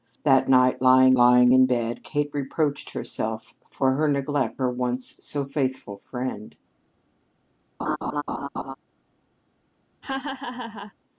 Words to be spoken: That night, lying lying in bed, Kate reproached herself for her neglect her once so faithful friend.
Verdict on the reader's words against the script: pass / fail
pass